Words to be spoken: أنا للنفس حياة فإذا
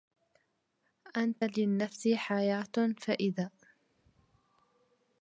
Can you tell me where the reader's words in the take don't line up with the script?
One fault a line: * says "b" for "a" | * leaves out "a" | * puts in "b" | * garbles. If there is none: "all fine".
* says "أنت" for "أنا"